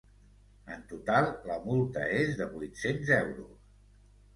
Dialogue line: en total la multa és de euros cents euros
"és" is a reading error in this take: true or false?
false